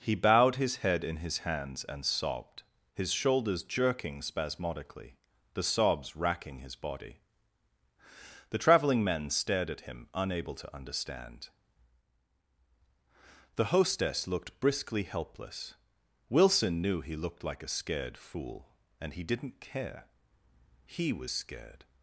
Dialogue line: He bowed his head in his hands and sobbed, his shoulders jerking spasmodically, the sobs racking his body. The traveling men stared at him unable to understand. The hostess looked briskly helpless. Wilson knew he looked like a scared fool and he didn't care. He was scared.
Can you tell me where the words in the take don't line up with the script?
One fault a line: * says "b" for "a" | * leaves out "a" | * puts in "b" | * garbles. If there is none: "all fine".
all fine